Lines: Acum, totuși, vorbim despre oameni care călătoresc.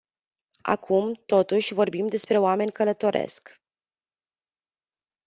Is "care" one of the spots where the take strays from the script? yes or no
yes